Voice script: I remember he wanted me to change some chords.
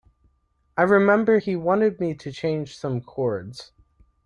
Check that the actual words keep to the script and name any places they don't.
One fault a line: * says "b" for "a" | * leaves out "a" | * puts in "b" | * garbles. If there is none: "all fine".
all fine